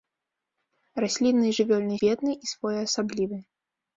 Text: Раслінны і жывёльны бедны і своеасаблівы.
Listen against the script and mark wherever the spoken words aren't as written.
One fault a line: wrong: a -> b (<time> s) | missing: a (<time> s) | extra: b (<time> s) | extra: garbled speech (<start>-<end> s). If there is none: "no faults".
no faults